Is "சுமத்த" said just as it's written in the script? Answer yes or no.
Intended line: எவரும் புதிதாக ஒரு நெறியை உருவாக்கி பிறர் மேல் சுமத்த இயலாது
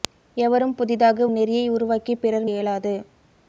no